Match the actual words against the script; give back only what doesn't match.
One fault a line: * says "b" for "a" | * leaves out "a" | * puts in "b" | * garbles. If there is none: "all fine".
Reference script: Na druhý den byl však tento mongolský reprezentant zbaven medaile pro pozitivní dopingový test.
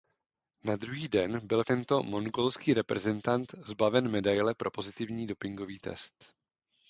* leaves out "však"